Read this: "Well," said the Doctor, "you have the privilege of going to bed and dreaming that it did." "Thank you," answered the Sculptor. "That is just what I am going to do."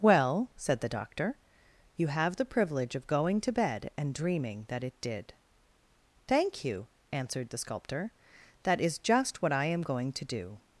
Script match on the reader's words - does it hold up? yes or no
yes